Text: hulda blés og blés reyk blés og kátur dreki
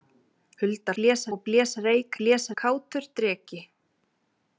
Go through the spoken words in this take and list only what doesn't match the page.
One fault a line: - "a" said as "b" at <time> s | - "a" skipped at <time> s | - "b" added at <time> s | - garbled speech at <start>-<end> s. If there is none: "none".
none